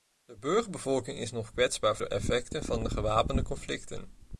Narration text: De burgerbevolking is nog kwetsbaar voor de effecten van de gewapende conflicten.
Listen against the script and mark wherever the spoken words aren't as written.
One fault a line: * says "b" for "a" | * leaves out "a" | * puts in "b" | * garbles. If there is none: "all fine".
* leaves out "voor"